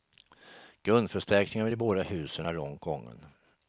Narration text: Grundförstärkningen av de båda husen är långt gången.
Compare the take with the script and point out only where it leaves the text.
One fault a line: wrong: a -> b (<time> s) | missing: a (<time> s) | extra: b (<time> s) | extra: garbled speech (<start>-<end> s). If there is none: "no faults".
no faults